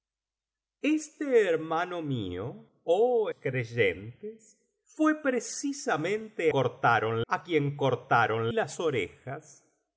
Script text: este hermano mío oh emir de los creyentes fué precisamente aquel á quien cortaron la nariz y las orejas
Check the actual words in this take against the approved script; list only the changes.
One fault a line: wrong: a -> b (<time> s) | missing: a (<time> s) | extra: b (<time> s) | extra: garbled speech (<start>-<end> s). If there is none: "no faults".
missing: emir de los (3.3 s)
wrong: aquel -> cortaron (6.5 s)
missing: la nariz y (8.5 s)